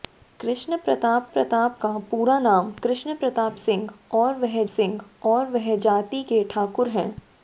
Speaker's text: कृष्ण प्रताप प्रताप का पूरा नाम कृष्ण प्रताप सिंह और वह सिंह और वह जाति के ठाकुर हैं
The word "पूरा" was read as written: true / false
true